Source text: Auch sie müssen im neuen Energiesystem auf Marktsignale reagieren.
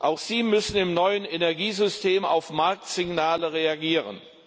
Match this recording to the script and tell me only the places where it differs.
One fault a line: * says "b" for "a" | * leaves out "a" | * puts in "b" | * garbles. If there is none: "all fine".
all fine